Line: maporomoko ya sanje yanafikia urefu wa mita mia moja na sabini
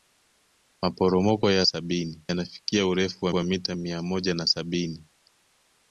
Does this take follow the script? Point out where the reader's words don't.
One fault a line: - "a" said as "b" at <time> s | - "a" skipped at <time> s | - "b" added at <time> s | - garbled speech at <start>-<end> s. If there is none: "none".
- "sanje" said as "sabini" at 1.6 s
- "wa" added at 3.3 s